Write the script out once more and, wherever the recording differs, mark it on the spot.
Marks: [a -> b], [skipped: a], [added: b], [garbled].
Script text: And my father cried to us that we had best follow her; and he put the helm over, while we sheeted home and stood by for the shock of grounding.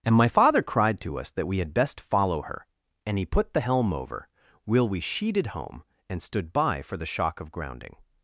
And my father cried to us that we had best follow her; and he put the helm over, [while -> will] we sheeted home and stood by for the shock of grounding.